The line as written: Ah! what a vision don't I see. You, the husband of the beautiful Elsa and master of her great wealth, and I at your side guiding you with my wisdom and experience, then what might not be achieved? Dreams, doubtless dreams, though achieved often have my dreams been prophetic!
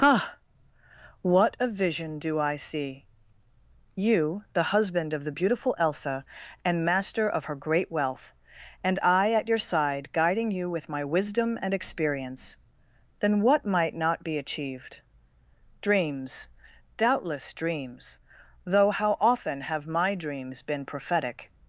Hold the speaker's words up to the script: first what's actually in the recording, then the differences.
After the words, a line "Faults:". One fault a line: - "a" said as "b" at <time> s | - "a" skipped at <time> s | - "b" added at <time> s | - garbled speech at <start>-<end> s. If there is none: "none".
Ah! what a vision do I see. You, the husband of the beautiful Elsa and master of her great wealth, and I at your side guiding you with my wisdom and experience, then what might not be achieved? Dreams, doubtless dreams, though how often have my dreams been prophetic!
Faults:
- "don't" said as "do" at 2.2 s
- "achieved" said as "how" at 18.9 s